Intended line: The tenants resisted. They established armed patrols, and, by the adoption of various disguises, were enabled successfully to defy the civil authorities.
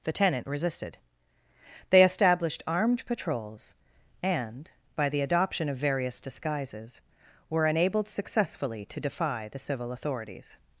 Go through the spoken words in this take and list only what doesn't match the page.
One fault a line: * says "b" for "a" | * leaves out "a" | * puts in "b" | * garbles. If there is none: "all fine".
* says "tenant" for "tenants"